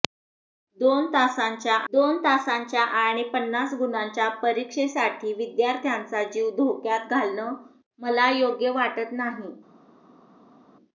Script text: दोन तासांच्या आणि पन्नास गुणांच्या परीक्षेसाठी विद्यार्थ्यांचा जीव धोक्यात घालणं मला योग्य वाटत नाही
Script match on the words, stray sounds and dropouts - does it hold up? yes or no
no